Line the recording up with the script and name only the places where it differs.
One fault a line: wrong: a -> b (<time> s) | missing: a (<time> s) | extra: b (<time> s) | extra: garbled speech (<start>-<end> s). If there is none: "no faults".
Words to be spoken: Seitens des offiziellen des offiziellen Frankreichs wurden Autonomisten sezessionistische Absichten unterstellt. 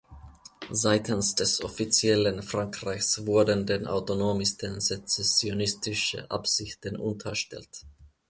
missing: des offiziellen (2.4 s)
extra: den (3.7 s)